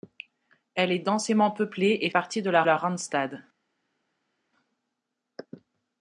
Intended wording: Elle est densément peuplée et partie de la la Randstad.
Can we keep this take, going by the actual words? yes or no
yes